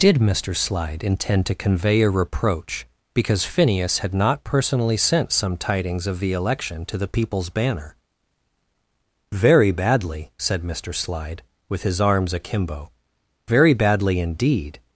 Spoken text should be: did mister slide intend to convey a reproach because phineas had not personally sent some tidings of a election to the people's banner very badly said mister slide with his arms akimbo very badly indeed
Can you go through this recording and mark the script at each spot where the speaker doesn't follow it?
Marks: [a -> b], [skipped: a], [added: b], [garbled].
did mister slide intend to convey a reproach because phineas had not personally sent some tidings of [a -> the] election to the people's banner very badly said mister slide with his arms akimbo very badly indeed